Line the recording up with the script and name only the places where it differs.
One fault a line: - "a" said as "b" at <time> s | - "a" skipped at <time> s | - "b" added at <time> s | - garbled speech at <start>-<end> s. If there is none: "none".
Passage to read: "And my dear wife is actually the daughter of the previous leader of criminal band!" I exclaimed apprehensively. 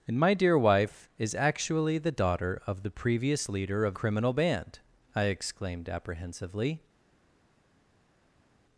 none